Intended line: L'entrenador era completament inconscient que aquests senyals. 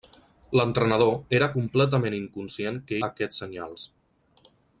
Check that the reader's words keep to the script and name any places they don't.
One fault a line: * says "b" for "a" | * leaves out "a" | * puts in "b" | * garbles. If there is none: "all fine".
all fine